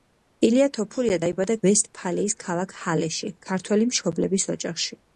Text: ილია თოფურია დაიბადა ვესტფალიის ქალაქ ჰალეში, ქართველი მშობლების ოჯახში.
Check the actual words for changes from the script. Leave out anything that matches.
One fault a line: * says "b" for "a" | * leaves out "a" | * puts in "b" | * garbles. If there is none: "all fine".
all fine